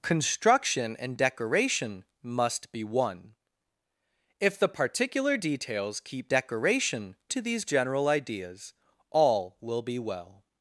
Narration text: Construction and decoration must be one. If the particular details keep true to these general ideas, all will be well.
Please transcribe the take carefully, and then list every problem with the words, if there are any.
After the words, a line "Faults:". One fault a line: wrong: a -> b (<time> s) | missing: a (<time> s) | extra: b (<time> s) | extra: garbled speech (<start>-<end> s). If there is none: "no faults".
Construction and decoration must be one. If the particular details keep decoration to these general ideas, all will be well.
Faults:
wrong: true -> decoration (6.3 s)